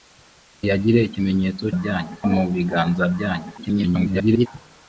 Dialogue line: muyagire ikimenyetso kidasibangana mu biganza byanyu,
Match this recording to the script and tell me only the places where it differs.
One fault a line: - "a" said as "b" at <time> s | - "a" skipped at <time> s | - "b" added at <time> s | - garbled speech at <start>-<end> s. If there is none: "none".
- "kidasibangana" said as "byanyu" at 1.8 s
- garbled speech at 3.6-4.5 s